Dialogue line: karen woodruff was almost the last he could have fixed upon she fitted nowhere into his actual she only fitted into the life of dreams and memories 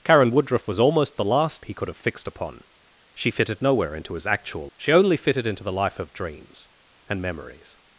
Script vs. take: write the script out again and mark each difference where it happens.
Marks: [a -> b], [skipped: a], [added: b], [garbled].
karen woodruff was almost the last he could have fixed upon she fitted nowhere into his actual she only fitted into the life of dreams and memories